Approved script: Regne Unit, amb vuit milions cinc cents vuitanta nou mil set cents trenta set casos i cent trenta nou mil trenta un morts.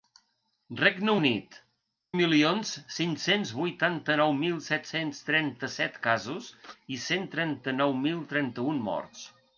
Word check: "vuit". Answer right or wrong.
wrong